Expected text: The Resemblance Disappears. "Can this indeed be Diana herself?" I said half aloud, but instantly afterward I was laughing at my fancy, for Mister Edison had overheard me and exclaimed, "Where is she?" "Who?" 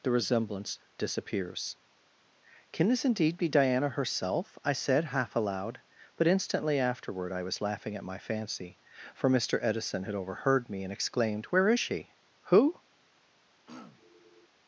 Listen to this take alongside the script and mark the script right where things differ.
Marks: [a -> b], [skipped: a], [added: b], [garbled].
The Resemblance Disappears. "Can this indeed be Diana herself?" I said half aloud, but instantly afterward I was laughing at my fancy, for Mister Edison had overheard me and exclaimed, "Where is she?" "Who?"